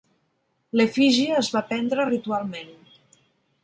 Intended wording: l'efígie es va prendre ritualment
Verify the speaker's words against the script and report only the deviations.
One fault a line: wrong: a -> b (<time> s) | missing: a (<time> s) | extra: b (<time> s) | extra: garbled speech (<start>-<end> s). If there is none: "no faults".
no faults